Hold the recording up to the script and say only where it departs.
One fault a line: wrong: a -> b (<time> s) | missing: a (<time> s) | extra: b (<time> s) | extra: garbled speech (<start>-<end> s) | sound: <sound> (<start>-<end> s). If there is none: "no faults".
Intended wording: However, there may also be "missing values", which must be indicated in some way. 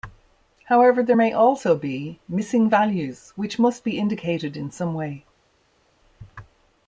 no faults